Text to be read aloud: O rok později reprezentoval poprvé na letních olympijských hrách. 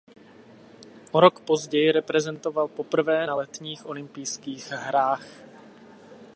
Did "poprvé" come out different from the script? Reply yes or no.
no